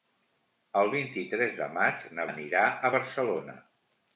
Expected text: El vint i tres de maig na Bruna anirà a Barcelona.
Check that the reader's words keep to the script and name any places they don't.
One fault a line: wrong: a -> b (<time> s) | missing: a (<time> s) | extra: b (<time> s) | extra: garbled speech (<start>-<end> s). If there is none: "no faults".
missing: Bruna (2.2 s)